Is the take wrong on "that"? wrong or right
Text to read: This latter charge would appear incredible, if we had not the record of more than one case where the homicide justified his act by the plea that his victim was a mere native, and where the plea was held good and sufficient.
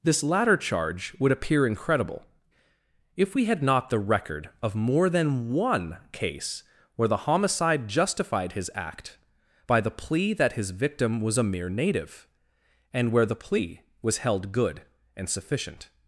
right